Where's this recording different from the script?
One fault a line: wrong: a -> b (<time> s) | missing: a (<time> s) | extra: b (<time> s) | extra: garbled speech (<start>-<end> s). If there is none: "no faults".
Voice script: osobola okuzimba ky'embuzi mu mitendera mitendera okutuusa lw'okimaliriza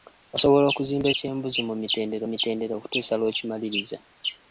no faults